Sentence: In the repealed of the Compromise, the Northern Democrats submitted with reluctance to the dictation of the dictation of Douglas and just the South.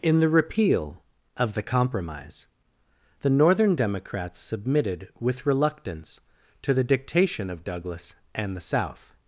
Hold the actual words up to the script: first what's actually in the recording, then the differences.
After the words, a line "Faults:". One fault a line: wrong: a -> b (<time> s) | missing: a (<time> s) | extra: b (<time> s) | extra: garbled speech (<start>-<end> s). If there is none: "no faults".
In the repeal of the Compromise, the Northern Democrats submitted with reluctance to the dictation of Douglas and the South.
Faults:
wrong: repealed -> repeal (0.3 s)
missing: the dictation of (7.6 s)
missing: just (8.6 s)